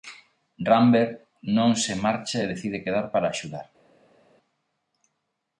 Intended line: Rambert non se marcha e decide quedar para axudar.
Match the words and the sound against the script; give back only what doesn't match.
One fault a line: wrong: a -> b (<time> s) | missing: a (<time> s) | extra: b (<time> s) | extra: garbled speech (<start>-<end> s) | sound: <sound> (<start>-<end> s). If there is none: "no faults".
no faults